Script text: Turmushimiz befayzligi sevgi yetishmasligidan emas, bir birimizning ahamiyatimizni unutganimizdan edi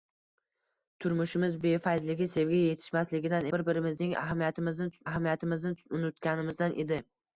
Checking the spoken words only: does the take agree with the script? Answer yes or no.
no